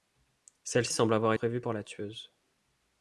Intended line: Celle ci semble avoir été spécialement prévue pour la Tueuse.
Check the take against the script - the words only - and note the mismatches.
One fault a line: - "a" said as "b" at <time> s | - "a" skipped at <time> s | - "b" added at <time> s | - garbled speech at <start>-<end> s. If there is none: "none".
- "ci" skipped at 0.9 s
- "été spécialement" skipped at 1.3 s